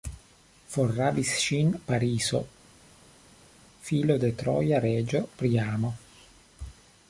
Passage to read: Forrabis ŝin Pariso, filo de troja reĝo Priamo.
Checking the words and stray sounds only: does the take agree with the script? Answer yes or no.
yes